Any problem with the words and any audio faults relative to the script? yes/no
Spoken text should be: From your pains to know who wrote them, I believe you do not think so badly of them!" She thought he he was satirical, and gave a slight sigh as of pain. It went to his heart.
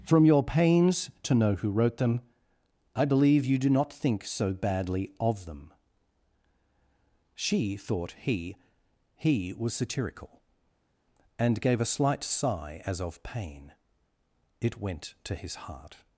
no